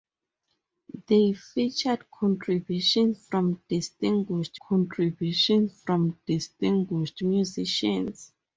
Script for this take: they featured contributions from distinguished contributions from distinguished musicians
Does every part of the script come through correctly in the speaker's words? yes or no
yes